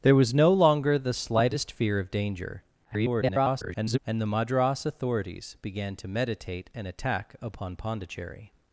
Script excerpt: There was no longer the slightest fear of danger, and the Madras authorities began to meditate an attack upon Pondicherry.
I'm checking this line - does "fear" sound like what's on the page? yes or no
yes